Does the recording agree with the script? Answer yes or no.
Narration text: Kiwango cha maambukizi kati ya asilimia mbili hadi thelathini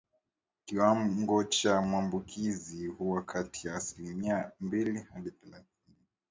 no